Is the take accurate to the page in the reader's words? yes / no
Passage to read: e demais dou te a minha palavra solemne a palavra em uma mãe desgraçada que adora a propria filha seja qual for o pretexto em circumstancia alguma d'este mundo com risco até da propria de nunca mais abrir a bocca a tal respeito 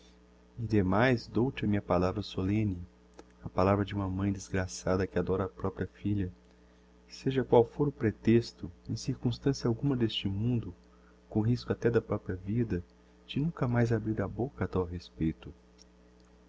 no